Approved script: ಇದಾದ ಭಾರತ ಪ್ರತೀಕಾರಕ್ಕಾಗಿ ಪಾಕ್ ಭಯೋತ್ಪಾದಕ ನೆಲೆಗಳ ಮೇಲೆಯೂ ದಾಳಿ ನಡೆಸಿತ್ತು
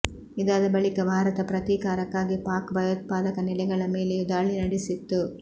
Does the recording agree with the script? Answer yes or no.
no